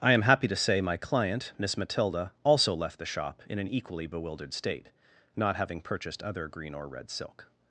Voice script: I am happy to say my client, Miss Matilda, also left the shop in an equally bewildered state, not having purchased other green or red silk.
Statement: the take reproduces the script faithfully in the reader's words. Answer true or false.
true